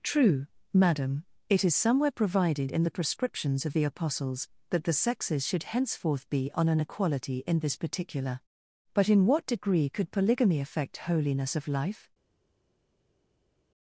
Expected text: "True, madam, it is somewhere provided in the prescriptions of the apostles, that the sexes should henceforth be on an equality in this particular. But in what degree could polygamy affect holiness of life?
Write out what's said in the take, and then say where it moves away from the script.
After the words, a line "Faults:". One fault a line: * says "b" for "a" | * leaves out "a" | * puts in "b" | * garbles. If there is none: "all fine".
"True, madam, it is somewhere provided in the prescriptions of the apostles, that the sexes should henceforth be on an equality in this particular. But in what degree could polygamy affect holiness of life?
Faults:
all fine